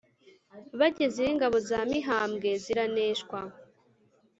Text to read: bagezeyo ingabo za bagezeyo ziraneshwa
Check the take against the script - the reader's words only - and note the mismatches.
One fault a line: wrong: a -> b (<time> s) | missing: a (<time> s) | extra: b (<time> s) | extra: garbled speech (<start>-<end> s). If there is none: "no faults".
wrong: bagezeyo -> mihambwe (1.9 s)